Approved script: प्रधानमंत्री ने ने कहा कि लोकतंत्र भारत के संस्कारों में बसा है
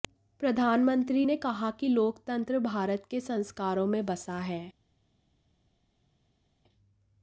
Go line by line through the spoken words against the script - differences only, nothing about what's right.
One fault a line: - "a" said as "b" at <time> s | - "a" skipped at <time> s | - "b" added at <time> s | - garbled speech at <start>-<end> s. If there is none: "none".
- "ने" skipped at 1.4 s